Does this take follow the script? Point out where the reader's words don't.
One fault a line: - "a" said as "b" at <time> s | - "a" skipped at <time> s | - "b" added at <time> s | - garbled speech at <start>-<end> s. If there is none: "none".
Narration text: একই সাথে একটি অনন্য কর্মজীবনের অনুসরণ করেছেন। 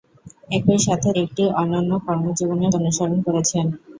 none